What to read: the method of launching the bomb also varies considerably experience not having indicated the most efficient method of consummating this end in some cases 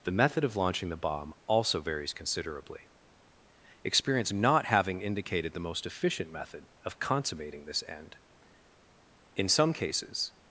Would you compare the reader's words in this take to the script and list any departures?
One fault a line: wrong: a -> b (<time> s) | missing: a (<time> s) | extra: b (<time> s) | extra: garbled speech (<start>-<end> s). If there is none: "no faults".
no faults